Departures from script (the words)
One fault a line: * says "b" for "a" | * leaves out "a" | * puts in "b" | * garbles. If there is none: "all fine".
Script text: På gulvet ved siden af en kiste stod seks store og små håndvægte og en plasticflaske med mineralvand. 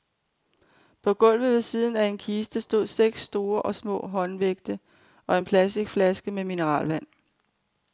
all fine